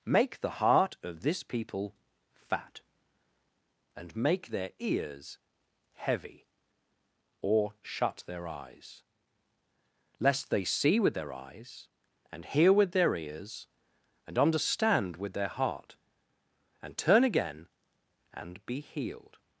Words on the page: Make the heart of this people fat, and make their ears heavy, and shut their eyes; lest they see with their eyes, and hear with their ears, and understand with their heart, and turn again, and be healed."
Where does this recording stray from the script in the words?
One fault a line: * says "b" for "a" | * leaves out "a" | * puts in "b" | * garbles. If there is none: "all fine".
* says "or" for "and"